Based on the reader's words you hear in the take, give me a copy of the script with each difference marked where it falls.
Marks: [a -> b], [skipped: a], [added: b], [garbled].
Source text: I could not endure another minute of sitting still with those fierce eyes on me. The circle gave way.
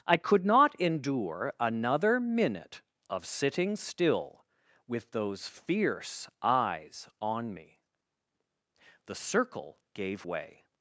I could not endure another minute of sitting still with those fierce eyes on me. The circle gave way.